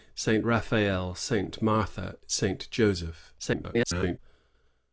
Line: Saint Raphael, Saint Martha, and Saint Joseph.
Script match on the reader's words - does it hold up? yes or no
no